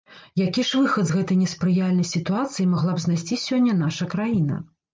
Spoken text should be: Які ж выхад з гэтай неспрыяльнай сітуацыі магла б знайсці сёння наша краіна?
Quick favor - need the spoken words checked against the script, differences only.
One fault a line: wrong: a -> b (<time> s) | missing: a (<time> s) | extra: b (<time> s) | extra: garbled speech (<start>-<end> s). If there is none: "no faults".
no faults